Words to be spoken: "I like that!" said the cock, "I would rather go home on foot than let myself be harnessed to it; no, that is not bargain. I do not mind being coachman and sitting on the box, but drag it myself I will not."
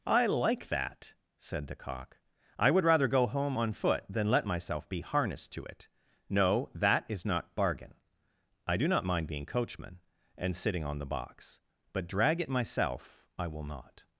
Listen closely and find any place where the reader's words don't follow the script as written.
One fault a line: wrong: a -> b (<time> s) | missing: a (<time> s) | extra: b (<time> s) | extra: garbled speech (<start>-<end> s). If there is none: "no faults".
no faults